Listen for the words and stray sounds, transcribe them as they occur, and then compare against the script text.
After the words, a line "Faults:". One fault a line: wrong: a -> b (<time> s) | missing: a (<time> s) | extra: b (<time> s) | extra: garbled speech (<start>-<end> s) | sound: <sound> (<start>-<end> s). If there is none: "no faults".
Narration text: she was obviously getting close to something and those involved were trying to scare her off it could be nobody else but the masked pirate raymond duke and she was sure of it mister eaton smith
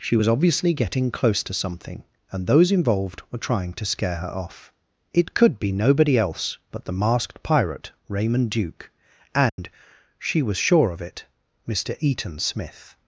she was obviously getting close to something and those involved were trying to scare her off it could be nobody else but the masked pirate raymond duke and she was sure of it mister eaton smith
Faults:
sound: dropout (9.5-9.6 s)